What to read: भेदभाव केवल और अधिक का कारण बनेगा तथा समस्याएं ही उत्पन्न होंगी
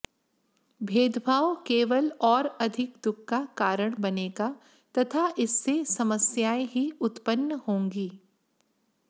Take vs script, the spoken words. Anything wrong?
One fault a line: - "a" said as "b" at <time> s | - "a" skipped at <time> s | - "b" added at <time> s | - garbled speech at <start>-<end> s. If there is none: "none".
- "दुख" added at 3.0 s
- "इससे" added at 5.4 s